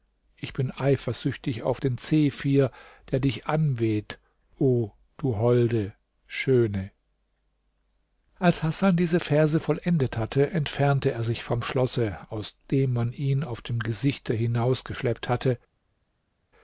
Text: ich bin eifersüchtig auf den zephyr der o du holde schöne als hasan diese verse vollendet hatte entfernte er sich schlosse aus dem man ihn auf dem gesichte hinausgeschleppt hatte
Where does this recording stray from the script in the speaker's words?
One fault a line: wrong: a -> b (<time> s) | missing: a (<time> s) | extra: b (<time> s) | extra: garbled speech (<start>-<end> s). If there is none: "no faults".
extra: dich anweht (3.2 s)
extra: vom (11.4 s)